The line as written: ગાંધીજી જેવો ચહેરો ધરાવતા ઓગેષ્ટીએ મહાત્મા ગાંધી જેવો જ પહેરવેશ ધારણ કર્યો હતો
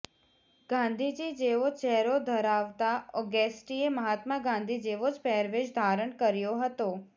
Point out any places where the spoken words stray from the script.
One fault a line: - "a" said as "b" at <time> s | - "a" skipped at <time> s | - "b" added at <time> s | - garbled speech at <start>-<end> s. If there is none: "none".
none